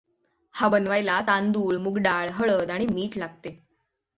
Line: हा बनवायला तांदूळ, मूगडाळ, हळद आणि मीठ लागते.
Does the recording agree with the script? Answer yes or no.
yes